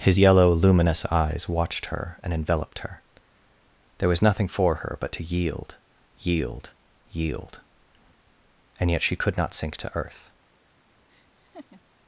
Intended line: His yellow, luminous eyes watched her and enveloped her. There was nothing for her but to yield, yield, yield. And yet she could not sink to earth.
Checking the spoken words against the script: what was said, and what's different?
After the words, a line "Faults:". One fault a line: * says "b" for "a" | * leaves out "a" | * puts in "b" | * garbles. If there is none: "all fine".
His yellow, luminous eyes watched her and enveloped her. There was nothing for her but to yield, yield, yield. And yet she could not sink to earth.
Faults:
all fine